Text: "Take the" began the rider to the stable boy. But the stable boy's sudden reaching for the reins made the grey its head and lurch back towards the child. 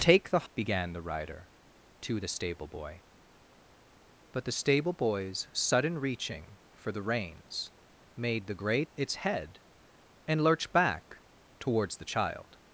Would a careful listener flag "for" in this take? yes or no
no